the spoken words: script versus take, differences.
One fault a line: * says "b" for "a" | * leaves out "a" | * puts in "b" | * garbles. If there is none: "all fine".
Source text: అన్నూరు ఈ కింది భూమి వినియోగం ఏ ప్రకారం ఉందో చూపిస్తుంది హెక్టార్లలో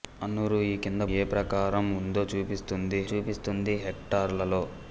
* leaves out "భూమి వినియోగం"
* puts in "చూపిస్తుంది"